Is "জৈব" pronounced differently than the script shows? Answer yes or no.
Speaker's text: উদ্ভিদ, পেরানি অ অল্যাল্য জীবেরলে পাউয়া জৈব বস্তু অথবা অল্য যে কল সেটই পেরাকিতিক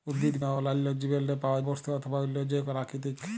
yes